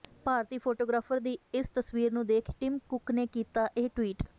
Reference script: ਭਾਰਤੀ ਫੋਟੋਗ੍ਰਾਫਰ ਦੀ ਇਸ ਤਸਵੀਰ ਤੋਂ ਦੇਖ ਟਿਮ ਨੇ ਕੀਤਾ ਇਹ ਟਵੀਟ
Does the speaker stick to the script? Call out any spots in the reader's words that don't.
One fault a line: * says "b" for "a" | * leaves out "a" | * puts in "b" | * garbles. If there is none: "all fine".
* says "ਨੂੰ" for "ਤੋਂ"
* puts in "ਕੁੱਕ"